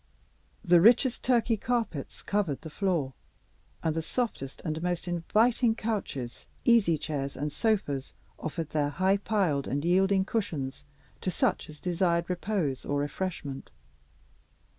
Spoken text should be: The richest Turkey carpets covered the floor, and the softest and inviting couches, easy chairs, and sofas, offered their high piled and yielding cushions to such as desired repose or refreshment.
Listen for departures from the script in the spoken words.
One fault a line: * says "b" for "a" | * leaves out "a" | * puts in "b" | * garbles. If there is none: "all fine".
* puts in "most"